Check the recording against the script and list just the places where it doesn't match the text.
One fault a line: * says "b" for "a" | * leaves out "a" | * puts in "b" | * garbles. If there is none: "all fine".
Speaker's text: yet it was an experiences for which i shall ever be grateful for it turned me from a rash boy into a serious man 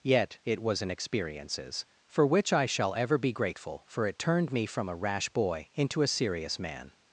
all fine